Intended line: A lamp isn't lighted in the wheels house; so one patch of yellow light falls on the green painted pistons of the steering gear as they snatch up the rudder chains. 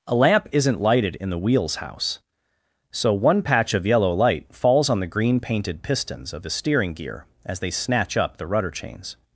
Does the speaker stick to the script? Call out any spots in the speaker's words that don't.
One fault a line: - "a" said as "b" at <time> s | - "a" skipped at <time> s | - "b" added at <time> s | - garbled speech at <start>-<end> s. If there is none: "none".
none